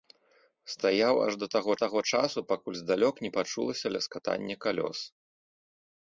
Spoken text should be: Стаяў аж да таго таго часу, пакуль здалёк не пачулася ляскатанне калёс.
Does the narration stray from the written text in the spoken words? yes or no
no